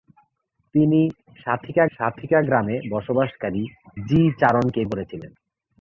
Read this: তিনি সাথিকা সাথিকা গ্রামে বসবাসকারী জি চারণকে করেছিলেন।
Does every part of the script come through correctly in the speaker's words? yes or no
yes